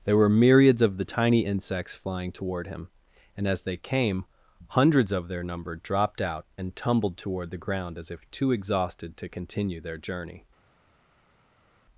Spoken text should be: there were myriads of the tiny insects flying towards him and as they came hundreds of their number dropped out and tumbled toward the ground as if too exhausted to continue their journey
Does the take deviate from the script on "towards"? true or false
true